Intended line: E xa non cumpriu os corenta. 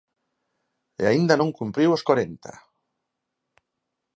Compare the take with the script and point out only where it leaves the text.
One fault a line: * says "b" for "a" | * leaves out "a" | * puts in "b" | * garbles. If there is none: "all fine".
* says "aínda" for "xa"